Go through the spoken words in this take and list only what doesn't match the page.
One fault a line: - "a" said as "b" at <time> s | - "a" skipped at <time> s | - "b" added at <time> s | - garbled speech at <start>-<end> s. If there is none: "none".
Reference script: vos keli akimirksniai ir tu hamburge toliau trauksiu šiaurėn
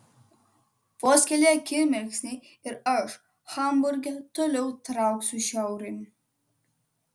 - "tu" said as "aš" at 2.9 s